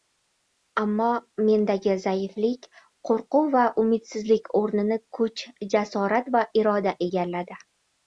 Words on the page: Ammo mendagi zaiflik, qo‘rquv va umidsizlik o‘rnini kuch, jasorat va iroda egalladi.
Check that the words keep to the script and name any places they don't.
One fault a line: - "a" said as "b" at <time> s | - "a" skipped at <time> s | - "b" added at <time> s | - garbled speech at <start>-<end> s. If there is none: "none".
none